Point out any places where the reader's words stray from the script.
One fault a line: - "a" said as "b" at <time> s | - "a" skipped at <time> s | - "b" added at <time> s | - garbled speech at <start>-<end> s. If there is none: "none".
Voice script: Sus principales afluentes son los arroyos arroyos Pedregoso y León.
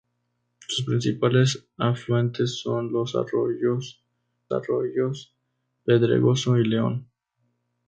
none